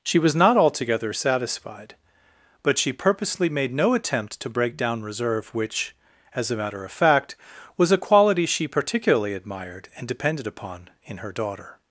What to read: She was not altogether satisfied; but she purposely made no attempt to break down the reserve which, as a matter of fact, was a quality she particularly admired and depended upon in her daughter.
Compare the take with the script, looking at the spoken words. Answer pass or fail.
fail